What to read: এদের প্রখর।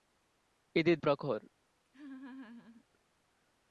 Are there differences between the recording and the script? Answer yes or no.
no